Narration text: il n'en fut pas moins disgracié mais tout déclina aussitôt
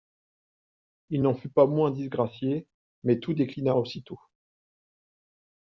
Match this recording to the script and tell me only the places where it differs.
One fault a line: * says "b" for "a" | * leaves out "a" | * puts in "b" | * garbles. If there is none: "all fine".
all fine